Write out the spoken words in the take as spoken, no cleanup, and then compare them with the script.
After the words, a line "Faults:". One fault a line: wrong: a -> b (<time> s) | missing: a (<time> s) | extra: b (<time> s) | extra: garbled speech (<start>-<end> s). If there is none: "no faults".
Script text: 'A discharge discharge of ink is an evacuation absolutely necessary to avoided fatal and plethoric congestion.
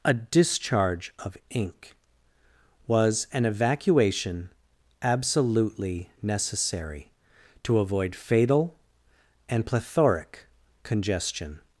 'A discharge of ink was an evacuation absolutely necessary to avoid fatal and plethoric congestion.
Faults:
missing: discharge (1.1 s)
wrong: is -> was (2.9 s)
wrong: avoided -> avoid (7.8 s)